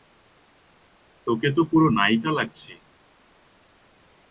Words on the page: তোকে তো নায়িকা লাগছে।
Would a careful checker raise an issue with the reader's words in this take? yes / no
yes